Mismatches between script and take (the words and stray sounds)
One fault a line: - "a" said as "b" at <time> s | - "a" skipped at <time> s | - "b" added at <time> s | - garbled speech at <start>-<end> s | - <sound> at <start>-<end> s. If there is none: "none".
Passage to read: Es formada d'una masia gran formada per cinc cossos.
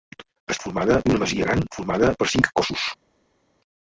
none